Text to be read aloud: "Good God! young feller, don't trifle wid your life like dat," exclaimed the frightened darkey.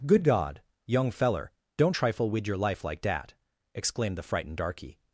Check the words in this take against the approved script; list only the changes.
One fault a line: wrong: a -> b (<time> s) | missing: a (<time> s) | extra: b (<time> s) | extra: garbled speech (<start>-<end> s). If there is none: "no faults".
no faults